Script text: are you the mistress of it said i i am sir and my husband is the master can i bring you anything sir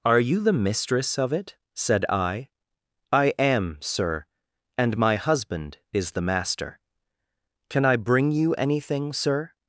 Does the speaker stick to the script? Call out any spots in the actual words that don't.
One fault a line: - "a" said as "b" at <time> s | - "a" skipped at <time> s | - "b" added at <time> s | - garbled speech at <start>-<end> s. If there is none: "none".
none